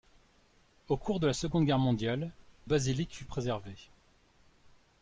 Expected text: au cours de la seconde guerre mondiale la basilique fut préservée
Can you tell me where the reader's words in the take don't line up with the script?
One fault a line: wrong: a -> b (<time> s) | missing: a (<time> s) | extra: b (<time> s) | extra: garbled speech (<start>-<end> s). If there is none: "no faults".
missing: la (2.3 s)